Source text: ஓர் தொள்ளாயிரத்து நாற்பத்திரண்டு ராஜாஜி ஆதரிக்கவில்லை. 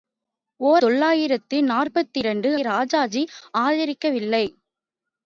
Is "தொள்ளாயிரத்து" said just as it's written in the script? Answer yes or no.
yes